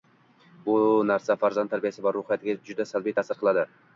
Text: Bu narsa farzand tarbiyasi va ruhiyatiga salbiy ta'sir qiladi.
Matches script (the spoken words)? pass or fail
fail